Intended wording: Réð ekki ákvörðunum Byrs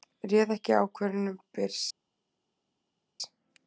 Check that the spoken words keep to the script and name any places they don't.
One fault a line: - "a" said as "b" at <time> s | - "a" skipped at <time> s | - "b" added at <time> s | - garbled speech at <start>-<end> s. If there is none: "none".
none